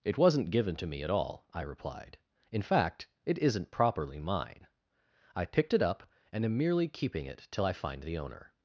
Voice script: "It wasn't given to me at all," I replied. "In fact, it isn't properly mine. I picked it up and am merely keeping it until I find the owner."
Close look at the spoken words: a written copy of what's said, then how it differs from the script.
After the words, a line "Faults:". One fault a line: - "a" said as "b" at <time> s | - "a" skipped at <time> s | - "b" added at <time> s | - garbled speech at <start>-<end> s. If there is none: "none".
"It wasn't given to me at all," I replied. "In fact, it isn't properly mine. I picked it up and am merely keeping it till I find the owner."
Faults:
- "until" said as "till" at 7.5 s